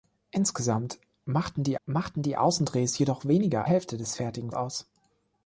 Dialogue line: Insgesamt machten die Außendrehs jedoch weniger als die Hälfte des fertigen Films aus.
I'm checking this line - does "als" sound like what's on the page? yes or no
no